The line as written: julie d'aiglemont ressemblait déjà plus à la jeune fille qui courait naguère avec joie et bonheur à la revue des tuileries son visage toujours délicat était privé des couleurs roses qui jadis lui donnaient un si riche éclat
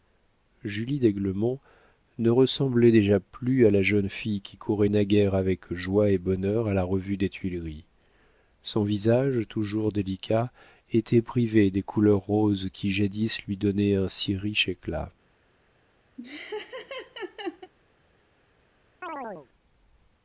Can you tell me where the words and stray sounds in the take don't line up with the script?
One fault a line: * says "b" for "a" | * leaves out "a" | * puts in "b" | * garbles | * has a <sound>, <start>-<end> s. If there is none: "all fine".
* puts in "ne"
* has a laugh, 16.2-17.7 s
* has a chirp, 19.0-19.5 s